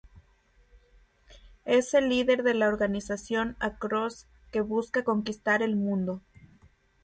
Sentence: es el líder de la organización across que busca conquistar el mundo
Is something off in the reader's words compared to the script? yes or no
no